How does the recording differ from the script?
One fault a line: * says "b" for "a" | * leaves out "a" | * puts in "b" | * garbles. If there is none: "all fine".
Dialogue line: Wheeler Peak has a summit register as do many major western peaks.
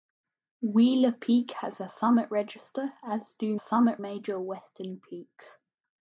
* says "summit" for "many"